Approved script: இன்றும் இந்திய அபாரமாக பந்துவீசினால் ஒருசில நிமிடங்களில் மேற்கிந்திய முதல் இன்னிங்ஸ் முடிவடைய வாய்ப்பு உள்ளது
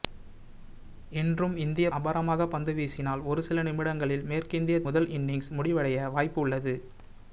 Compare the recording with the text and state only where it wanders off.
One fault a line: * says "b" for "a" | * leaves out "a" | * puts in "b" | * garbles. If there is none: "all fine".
all fine